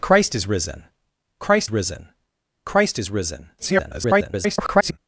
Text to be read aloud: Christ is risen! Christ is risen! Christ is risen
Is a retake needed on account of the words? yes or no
yes